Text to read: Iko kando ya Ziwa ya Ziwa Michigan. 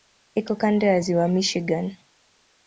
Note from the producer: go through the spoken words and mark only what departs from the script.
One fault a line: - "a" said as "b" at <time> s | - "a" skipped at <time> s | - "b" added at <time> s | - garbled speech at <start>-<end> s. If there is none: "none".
- "ya Ziwa" skipped at 1.3 s